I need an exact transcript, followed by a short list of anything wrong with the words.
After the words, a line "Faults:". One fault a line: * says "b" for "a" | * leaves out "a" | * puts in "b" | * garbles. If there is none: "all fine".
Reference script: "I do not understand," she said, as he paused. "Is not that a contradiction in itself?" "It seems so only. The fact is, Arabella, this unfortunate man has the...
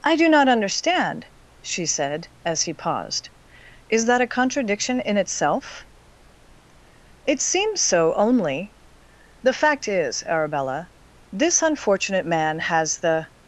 "I do not understand," she said, as he paused. "Is that a contradiction in itself?" "It seems so only. The fact is, Arabella, this unfortunate man has the...
Faults:
* leaves out "not"